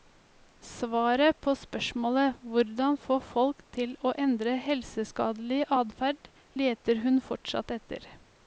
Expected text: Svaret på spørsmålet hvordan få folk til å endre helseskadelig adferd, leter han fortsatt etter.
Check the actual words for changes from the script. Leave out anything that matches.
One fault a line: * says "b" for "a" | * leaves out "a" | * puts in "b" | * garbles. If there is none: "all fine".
* says "hun" for "han"